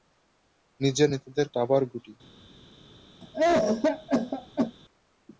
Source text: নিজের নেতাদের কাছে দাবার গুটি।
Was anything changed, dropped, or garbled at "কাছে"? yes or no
yes